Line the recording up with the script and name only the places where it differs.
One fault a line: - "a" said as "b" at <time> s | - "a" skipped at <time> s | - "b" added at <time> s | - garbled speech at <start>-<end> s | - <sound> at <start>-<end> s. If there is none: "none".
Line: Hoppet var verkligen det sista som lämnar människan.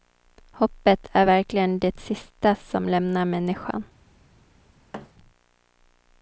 - "var" said as "är" at 1.1 s
- thud at 4.9-5.1 s